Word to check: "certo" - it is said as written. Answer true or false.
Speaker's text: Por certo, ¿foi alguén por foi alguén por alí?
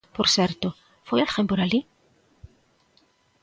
true